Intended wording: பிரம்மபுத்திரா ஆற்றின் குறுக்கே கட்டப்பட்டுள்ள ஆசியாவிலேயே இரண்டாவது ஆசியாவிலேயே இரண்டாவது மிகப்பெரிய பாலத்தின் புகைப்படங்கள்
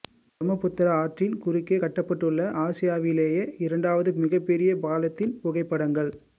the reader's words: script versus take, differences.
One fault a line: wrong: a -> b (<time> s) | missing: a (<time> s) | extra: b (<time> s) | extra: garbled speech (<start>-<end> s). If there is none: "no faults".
missing: ஆசியாவிலேயே இரண்டாவது (4.1 s)